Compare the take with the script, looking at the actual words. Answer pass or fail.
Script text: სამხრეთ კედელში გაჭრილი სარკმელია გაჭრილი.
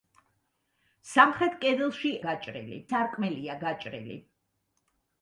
pass